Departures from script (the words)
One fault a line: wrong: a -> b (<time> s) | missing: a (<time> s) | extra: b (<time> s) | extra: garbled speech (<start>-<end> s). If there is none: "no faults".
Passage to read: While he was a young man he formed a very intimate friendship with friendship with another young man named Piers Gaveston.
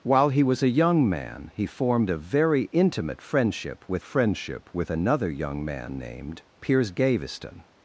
no faults